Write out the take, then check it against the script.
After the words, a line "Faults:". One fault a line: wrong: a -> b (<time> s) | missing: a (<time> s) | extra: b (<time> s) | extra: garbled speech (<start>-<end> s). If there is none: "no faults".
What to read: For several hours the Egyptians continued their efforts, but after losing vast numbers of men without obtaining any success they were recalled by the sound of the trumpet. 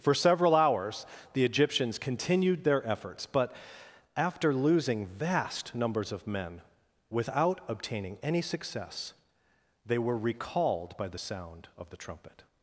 For several hours the Egyptians continued their efforts, but after losing vast numbers of men without obtaining any success they were recalled by the sound of the trumpet.
Faults:
no faults